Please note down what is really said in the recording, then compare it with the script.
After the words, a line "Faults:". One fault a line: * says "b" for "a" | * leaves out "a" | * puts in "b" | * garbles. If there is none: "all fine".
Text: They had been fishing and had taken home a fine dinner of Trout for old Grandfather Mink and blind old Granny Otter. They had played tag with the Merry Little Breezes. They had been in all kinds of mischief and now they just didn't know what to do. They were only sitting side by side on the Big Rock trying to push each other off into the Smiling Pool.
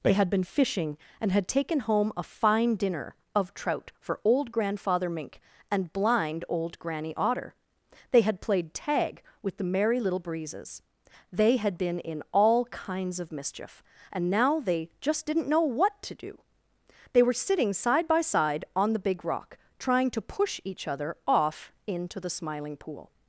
They had been fishing and had taken home a fine dinner of Trout for old Grandfather Mink and blind old Granny Otter. They had played tag with the Merry Little Breezes. They had been in all kinds of mischief and now they just didn't know what to do. They were sitting side by side on the Big Rock trying to push each other off into the Smiling Pool.
Faults:
* leaves out "only"